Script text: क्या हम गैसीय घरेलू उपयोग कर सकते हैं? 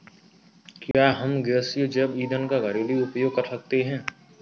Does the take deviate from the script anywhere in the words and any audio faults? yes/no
yes